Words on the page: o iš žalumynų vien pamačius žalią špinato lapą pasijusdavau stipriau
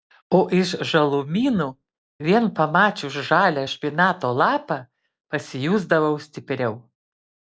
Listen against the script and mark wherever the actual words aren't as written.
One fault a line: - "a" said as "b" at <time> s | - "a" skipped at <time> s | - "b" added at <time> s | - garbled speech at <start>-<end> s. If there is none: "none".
none